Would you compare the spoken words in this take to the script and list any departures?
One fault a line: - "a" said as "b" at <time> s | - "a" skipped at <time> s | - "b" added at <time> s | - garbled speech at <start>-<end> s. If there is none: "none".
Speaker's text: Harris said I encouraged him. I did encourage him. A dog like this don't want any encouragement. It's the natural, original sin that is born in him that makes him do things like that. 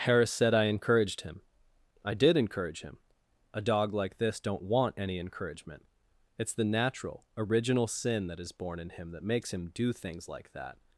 none